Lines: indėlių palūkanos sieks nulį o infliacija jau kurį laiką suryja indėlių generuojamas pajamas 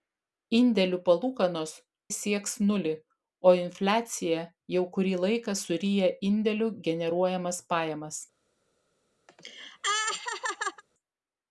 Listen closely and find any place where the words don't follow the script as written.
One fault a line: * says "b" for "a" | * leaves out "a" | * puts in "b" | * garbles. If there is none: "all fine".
all fine